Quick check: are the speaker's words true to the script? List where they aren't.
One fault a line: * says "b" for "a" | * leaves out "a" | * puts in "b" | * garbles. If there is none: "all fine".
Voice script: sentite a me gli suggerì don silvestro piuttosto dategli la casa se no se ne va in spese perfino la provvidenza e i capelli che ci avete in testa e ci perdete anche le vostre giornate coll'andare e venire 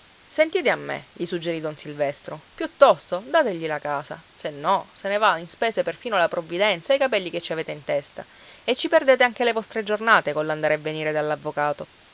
all fine